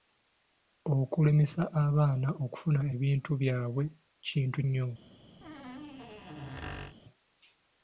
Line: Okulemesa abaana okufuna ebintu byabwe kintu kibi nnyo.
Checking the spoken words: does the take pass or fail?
fail